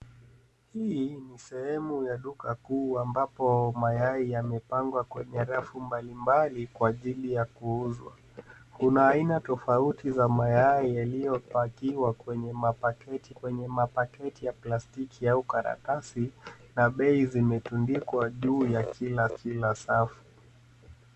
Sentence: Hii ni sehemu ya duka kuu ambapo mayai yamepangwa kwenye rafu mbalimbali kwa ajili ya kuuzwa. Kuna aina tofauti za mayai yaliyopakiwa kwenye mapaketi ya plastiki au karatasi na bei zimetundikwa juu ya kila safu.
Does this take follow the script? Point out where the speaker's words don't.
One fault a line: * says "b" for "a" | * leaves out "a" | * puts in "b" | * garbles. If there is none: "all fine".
* puts in "kwenye mapaketi"
* puts in "kila"